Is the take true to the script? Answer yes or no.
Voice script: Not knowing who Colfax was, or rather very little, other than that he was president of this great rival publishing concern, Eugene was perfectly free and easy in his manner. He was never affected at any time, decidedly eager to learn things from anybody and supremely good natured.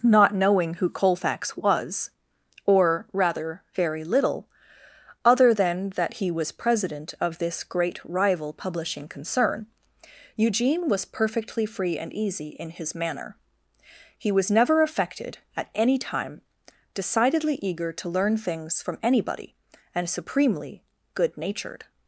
yes